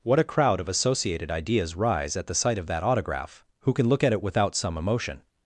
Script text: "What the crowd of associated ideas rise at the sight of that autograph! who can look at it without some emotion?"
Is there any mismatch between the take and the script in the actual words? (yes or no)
yes